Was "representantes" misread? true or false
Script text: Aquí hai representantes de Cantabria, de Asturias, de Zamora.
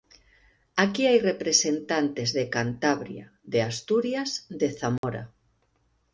false